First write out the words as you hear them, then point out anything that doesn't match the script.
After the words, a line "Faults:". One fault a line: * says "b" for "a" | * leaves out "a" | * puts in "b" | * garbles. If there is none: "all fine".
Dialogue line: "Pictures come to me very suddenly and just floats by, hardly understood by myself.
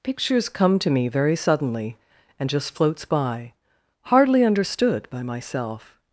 "Pictures come to me very suddenly and just floats by, hardly understood by myself.
Faults:
all fine